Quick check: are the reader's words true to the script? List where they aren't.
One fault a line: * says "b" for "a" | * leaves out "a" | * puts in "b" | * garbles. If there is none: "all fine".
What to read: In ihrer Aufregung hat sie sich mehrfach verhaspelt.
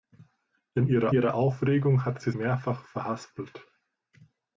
* puts in "ihrer"
* leaves out "sich"